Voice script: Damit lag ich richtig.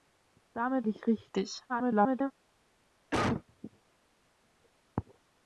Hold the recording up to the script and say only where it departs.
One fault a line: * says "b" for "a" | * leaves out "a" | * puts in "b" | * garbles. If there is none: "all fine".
* leaves out "lag"
* garbles